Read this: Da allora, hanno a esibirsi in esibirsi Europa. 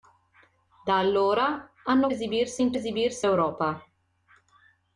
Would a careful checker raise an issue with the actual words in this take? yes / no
no